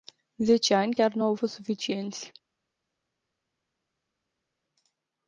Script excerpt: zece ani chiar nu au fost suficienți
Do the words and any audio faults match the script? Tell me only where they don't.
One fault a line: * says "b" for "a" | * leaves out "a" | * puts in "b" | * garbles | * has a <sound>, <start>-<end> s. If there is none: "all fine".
all fine